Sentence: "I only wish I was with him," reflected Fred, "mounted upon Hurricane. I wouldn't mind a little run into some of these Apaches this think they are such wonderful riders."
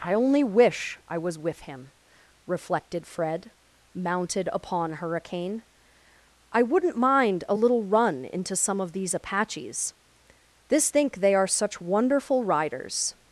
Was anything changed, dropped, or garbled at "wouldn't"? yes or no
no